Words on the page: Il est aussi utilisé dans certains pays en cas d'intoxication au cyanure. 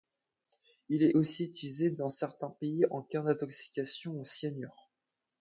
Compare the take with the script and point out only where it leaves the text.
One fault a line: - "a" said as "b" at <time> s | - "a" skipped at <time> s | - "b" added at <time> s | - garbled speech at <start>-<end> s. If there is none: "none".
none